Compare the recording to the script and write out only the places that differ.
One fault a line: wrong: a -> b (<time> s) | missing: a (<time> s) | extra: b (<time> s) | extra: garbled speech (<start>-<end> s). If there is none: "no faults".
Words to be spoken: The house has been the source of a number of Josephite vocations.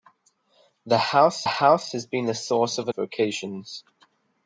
extra: house (1.4 s)
missing: number of Josephite (2.9 s)